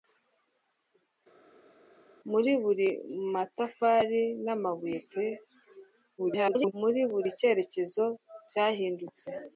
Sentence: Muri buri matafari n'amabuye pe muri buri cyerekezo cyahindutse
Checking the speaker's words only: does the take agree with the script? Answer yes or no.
no